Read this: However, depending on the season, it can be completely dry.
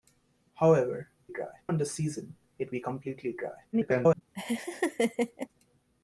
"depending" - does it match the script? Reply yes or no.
no